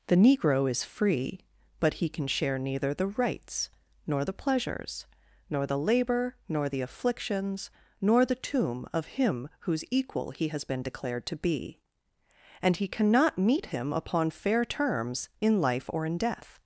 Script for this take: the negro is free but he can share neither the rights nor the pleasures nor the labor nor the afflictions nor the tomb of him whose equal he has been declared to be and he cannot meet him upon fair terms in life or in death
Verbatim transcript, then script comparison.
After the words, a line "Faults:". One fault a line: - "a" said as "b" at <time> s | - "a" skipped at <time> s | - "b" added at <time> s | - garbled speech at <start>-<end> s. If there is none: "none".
the negro is free but he can share neither the rights nor the pleasures nor the labor nor the afflictions nor the tomb of him whose equal he has been declared to be and he cannot meet him upon fair terms in life or in death
Faults:
none